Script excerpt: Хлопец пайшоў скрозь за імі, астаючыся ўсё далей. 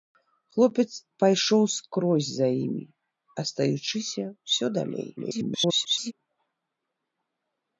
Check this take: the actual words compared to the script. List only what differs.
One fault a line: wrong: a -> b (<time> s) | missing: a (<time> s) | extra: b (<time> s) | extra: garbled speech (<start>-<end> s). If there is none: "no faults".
extra: garbled speech (5.2-6.1 s)